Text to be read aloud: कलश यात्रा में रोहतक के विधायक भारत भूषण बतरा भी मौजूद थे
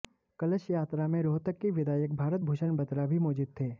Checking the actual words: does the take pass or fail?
pass